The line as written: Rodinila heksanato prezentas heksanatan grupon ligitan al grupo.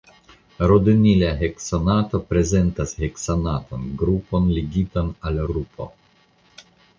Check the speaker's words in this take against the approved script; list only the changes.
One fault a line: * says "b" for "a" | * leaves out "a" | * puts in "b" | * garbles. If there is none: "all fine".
all fine